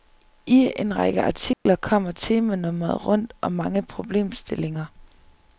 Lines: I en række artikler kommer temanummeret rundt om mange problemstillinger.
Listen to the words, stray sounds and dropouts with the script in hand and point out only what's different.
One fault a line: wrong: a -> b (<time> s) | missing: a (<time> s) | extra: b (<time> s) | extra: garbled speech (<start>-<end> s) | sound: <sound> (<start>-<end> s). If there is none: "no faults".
sound: dropout (1.5-1.7 s)